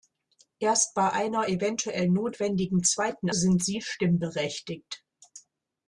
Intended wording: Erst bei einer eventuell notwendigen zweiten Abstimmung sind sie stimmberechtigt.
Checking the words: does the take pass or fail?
fail